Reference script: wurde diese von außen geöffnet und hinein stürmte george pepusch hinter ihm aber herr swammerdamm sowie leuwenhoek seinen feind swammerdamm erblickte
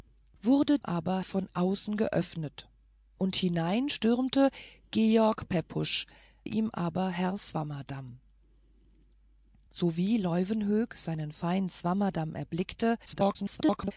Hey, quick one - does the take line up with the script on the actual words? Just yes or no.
no